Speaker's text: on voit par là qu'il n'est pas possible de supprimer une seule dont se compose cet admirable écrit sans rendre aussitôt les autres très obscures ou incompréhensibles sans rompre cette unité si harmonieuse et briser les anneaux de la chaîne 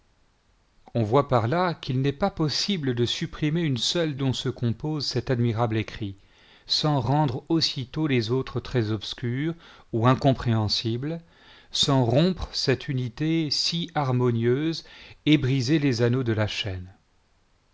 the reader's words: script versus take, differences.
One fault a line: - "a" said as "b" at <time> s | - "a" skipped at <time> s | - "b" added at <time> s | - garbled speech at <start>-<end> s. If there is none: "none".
none